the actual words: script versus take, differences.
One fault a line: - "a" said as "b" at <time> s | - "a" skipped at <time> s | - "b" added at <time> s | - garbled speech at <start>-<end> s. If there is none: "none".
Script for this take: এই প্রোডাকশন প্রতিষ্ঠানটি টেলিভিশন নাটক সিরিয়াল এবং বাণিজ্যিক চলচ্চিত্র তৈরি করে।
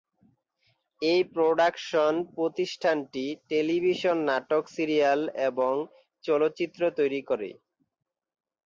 - "বাণিজ্যিক" skipped at 5.7 s